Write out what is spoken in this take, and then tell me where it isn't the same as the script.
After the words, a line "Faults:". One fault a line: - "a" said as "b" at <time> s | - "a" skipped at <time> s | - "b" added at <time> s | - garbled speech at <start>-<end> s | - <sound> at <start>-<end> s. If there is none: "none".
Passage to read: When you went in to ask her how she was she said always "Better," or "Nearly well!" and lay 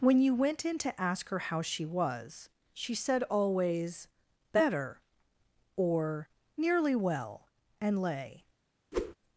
When you went in to ask her how she was she said always "Better," or "Nearly well!" and lay
Faults:
- whoosh at 8.9-9.1 s